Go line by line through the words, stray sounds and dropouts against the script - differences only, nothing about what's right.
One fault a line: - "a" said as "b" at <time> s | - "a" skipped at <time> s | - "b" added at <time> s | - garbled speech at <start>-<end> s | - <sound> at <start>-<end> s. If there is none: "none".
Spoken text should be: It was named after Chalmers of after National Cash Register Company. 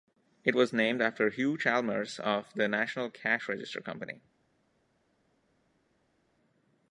- "Hugh" added at 1.3 s
- "after" said as "the" at 2.5 s